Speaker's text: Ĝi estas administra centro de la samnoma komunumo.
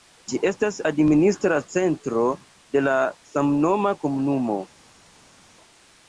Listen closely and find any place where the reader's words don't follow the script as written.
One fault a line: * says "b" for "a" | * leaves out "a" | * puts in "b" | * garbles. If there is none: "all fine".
all fine